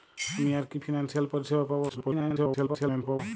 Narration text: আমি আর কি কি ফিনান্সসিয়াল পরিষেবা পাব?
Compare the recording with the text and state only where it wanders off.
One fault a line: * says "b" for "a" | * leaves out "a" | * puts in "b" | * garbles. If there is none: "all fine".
* garbles